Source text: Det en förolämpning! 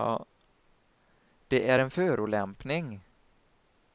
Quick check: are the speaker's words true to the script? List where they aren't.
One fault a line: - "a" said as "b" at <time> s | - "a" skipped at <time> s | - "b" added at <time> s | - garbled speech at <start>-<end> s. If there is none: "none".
- "är" added at 1.7 s